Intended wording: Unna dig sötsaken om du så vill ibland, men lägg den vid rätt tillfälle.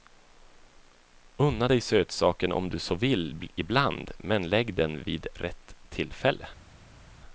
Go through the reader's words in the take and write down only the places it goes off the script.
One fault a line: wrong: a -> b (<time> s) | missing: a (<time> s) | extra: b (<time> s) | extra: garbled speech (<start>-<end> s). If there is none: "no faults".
no faults